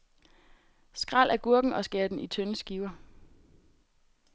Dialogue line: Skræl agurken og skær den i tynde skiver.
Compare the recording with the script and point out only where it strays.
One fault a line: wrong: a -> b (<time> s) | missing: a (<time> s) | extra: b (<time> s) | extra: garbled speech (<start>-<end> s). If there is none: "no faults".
no faults